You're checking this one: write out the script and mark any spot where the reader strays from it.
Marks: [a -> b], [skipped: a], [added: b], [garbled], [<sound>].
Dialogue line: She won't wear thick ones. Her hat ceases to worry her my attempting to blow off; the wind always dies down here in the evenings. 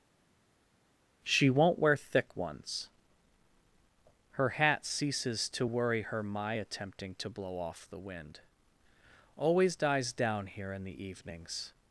She won't wear thick ones. Her hat ceases to worry her my attempting to blow off; the wind always dies down here in the evenings.